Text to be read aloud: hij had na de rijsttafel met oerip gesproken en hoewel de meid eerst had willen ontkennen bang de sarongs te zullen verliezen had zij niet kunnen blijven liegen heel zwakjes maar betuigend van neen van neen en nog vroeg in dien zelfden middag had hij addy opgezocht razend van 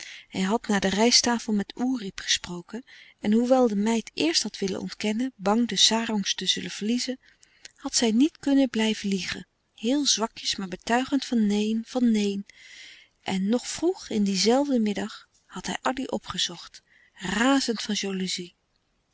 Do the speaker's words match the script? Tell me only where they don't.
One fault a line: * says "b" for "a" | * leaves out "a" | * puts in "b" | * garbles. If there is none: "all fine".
all fine